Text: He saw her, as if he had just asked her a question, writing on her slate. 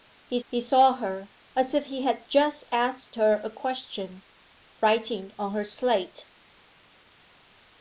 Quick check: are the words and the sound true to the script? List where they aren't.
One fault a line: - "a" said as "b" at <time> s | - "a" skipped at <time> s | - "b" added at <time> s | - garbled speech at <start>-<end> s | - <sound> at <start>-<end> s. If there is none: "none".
- "he" added at 0.5 s